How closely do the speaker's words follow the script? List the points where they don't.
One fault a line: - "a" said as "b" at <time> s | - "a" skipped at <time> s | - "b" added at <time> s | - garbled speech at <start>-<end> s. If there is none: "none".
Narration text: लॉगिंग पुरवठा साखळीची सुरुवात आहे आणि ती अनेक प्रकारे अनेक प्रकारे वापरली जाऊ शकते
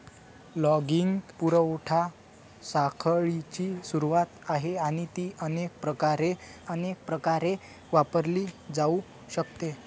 none